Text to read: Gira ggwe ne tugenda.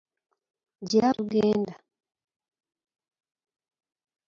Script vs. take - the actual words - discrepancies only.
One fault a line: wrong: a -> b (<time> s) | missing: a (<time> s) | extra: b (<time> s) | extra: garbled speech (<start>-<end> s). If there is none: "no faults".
missing: ggwe ne (1.1 s)